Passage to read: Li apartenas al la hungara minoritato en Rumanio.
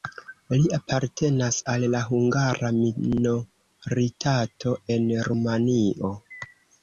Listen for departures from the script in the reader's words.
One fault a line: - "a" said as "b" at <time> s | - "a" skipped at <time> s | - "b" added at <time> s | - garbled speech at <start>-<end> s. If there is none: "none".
none